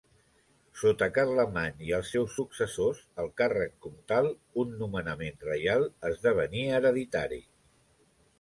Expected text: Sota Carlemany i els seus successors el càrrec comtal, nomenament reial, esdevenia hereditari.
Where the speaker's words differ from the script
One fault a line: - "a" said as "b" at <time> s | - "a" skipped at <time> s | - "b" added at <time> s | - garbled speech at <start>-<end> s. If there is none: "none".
- "un" added at 4.7 s